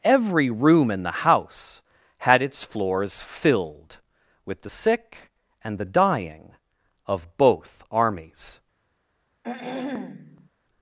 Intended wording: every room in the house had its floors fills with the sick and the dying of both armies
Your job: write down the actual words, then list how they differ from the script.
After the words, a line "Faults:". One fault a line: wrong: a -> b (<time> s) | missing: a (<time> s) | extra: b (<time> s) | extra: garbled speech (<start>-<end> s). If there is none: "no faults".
every room in the house had its floors filled with the sick and the dying of both armies
Faults:
wrong: fills -> filled (3.2 s)